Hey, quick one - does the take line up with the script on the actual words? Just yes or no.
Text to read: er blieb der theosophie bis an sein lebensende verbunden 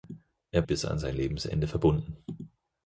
no